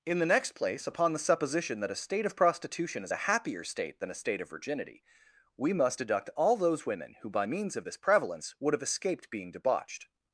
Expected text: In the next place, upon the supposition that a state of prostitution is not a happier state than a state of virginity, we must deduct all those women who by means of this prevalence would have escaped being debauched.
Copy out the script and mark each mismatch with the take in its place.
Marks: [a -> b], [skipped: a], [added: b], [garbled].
In the next place, upon the supposition that a state of prostitution is [skipped: not] a happier state than a state of virginity, we must deduct all those women who by means of this prevalence would have escaped being debauched.